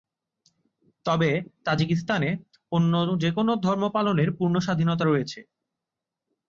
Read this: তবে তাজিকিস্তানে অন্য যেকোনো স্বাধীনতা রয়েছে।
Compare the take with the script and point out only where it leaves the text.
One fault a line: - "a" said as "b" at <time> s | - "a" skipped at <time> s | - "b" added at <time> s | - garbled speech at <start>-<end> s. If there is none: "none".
- "ধর্ম পালনের পূর্ণ" added at 3.6 s